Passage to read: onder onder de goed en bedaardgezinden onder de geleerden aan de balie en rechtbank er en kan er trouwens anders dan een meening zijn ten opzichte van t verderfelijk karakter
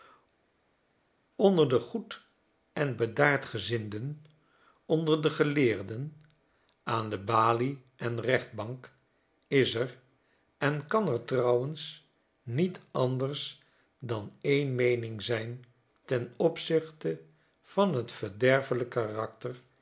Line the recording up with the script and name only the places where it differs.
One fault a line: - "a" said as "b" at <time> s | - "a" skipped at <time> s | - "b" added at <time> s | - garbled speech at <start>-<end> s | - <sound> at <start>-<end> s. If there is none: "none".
- "onder" skipped at 1.7 s
- "is" added at 9.5 s
- "niet" added at 12.4 s